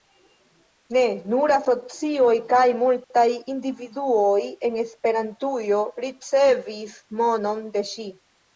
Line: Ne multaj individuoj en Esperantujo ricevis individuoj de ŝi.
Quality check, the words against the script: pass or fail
fail